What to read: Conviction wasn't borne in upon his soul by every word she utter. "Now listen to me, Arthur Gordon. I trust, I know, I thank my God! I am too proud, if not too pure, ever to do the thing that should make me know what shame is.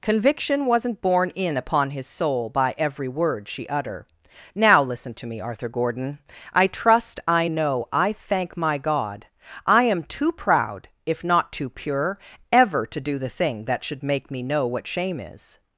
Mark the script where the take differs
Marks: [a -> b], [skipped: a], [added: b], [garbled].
Conviction wasn't borne in upon his soul by every word she utter. "Now listen to me, Arthur Gordon. I trust, I know, I thank my God! I am too proud, if not too pure, ever to do the thing that should make me know what shame is.